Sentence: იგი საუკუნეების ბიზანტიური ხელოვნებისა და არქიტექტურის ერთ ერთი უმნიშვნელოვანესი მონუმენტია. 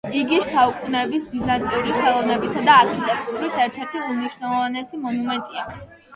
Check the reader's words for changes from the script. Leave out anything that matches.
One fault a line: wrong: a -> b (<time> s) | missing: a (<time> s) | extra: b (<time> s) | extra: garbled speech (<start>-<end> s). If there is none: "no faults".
no faults